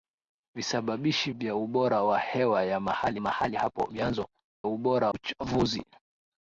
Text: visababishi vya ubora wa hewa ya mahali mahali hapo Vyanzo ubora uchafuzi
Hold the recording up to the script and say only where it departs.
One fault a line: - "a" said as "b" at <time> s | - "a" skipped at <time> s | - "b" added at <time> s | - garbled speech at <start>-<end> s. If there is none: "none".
none